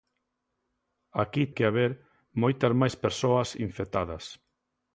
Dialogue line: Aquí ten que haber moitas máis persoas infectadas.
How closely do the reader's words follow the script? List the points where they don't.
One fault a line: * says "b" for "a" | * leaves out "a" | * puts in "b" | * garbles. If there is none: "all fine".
* leaves out "ten"